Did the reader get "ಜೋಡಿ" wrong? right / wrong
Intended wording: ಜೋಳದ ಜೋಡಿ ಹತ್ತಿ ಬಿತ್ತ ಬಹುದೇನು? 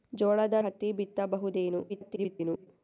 wrong